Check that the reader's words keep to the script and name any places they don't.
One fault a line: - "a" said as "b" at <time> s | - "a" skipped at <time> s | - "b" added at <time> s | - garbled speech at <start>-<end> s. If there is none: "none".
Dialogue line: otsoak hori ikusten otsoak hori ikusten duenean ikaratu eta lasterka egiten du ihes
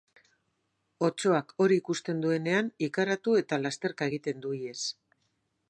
- "otsoak hori ikusten" skipped at 2.2 s